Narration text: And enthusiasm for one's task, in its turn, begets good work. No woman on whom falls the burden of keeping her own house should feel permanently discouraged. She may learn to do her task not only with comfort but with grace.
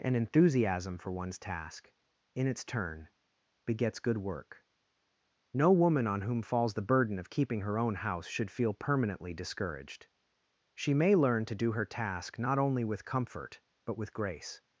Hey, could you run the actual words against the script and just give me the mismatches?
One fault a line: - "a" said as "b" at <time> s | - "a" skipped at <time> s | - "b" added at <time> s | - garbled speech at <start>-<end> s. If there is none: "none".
none